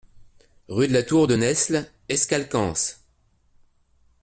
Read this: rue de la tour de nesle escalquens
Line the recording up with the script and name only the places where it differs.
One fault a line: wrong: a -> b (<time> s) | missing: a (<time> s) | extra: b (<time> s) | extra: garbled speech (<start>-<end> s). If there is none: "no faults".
no faults